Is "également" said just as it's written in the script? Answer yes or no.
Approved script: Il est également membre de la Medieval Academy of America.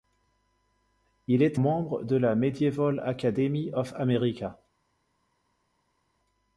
no